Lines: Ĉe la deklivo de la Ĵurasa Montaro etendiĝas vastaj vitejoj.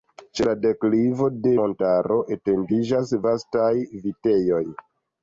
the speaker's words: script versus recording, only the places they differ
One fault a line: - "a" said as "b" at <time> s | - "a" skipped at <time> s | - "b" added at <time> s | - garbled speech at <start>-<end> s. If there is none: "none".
- "la Ĵurasa" skipped at 1.5 s